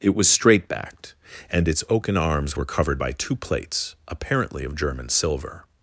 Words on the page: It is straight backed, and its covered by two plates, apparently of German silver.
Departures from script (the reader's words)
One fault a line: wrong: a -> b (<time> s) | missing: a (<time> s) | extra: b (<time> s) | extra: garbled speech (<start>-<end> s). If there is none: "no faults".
wrong: is -> was (0.1 s)
extra: oaken arms were (1.9 s)